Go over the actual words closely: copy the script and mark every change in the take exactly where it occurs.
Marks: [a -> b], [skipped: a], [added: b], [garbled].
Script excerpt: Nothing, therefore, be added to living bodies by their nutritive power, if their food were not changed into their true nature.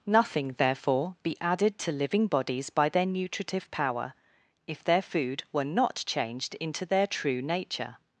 Nothing, therefore, be added to living bodies by their nutritive power, if their food were not changed into their true nature.